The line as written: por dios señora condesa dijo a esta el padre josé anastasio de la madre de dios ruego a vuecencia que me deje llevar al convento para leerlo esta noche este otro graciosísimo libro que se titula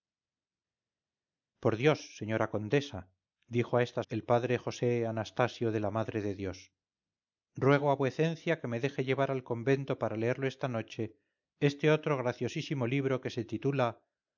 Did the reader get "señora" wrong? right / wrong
right